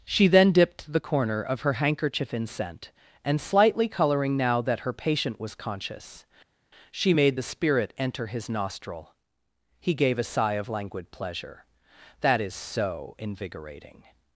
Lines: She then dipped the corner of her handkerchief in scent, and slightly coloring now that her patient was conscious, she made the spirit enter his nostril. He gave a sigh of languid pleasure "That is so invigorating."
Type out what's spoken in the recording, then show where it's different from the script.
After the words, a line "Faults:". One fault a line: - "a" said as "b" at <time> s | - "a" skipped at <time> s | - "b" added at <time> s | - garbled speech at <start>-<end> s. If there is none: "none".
She then dipped the corner of her handkerchief in scent, and slightly coloring now that her patient was conscious, she made the spirit enter his nostril. He gave a sigh of languid pleasure "That is so invigorating."
Faults:
none